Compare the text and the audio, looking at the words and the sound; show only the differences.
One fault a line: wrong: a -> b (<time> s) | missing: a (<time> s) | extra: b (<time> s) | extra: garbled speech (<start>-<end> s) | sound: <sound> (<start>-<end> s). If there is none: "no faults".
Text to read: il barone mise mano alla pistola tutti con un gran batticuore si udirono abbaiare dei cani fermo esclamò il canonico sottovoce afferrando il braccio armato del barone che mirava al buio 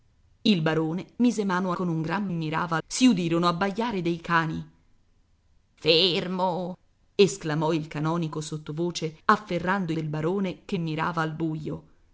missing: alla pistola tutti (1.7 s)
wrong: batticuore -> mirava (2.3 s)
missing: il braccio armato (9.9 s)